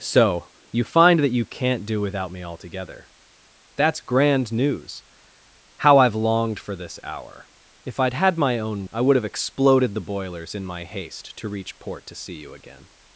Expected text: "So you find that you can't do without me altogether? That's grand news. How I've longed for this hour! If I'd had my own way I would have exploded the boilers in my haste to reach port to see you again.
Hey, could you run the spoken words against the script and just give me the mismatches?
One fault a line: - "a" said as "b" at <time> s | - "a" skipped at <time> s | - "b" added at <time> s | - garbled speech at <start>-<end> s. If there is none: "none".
- "way" skipped at 8.9 s